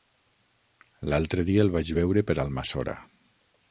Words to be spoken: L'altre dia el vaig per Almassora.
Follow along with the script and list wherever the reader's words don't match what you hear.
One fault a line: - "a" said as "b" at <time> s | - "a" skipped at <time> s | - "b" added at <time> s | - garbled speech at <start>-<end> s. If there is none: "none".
- "veure" added at 2.0 s